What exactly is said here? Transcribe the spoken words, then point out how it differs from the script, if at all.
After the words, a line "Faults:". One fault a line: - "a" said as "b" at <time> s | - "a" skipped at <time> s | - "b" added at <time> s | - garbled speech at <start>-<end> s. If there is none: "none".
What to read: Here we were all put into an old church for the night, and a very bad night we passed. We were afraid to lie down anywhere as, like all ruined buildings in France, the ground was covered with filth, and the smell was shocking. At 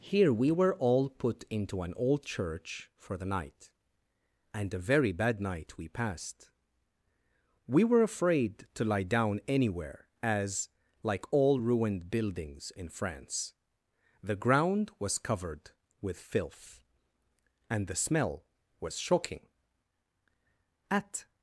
Here we were all put into an old church for the night, and a very bad night we passed. We were afraid to lie down anywhere as, like all ruined buildings in France, the ground was covered with filth, and the smell was shocking. At
Faults:
none